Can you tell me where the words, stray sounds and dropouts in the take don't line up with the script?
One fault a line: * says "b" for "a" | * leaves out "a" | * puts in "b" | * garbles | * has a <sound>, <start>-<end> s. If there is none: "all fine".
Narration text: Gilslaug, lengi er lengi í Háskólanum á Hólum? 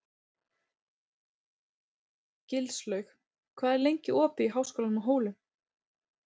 * says "hvað" for "lengi"
* puts in "opið"